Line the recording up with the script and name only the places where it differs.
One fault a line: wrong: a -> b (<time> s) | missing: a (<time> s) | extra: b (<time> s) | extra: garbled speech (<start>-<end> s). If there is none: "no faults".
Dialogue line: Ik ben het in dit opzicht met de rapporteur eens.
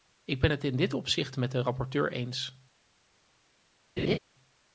no faults